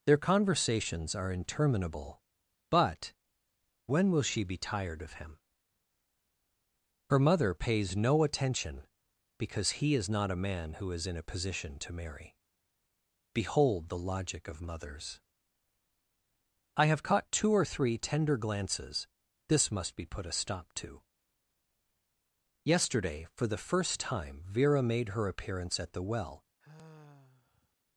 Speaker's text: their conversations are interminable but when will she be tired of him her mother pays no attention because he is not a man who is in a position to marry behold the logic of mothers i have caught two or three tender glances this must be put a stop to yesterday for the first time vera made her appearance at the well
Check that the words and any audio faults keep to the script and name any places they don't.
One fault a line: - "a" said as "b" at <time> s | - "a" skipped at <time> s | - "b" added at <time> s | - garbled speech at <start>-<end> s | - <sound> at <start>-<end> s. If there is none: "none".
- sigh at 26.6-27.8 s